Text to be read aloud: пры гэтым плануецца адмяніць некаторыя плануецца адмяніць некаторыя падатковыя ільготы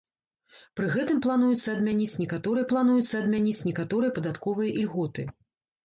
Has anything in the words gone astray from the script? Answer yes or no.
no